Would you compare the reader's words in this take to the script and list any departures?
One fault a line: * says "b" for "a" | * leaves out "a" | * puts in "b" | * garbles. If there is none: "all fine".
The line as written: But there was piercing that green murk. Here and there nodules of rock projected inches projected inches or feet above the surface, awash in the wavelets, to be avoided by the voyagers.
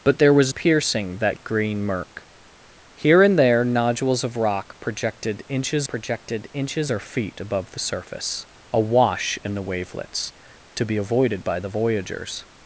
all fine